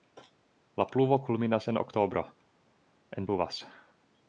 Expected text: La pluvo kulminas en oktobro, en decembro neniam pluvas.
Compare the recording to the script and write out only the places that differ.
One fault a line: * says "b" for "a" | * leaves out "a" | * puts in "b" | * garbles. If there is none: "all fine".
* leaves out "decembro neniam"